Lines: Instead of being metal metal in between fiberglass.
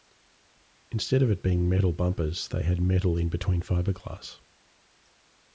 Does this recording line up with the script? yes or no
no